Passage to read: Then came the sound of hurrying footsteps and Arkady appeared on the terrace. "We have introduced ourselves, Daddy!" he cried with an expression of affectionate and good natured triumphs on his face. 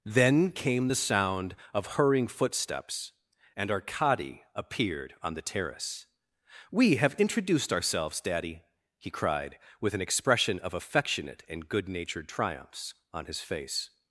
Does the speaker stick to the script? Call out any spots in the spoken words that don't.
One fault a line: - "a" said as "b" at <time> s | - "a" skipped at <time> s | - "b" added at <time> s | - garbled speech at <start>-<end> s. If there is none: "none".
none